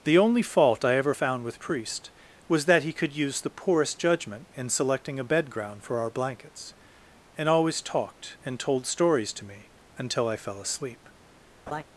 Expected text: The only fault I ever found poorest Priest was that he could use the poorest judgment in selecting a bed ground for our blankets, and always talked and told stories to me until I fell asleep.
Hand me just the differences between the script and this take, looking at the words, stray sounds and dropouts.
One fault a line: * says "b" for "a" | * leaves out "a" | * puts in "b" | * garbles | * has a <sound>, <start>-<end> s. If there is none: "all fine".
* says "with" for "poorest"
* has a laugh, 11.7-11.8 s